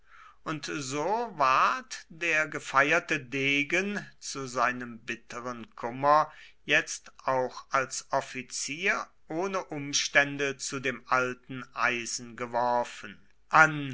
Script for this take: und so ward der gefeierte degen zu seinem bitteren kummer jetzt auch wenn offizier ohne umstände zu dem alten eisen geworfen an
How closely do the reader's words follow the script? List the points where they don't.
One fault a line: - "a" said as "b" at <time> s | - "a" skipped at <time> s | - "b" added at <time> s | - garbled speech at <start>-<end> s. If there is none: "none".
- "wenn" said as "als" at 7.7 s